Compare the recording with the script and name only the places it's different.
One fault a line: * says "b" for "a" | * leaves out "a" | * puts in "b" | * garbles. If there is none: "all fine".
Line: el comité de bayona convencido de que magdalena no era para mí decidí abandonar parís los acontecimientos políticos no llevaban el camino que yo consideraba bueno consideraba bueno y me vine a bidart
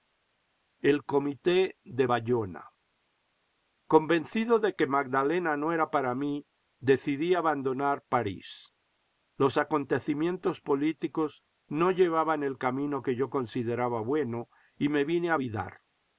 * leaves out "consideraba bueno"